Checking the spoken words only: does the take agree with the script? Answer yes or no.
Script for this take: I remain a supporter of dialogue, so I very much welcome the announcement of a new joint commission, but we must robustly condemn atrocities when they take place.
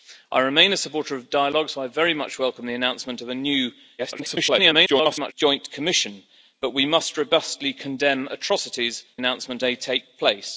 no